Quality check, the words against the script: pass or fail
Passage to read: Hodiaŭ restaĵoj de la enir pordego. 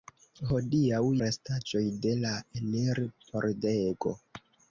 pass